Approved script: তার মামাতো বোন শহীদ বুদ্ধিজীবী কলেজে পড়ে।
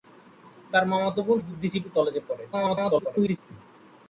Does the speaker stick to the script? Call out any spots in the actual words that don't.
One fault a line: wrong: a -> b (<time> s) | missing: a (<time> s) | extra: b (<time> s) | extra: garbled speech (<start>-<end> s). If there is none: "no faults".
missing: শহীদ (1.4 s)
extra: garbled speech (2.5-3.4 s)